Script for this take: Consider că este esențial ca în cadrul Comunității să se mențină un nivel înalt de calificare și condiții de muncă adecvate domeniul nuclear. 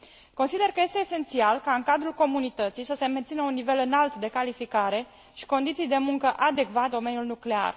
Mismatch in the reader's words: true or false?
false